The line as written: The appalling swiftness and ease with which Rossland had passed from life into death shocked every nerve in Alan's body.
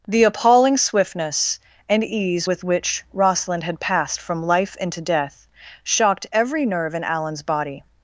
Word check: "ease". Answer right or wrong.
right